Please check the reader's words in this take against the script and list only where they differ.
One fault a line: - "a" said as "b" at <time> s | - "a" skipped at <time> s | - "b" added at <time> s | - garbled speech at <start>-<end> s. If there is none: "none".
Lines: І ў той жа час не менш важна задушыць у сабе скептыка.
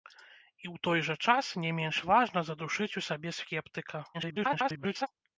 - garbled speech at 4.1-5.1 s